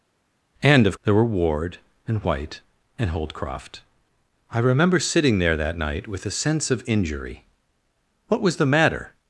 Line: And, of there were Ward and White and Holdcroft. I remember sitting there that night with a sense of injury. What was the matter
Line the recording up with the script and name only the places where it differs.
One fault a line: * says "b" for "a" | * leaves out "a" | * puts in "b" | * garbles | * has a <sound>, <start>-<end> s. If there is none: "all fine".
all fine